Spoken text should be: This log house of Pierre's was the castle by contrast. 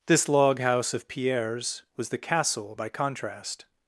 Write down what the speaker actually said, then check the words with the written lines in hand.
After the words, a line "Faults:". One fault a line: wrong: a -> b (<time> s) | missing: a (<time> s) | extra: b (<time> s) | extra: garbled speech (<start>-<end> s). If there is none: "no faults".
This log house of Pierre's was the castle by contrast.
Faults:
no faults